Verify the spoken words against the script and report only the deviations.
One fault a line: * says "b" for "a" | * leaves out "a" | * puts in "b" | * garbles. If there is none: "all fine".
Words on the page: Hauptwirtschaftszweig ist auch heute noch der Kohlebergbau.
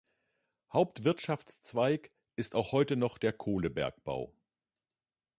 all fine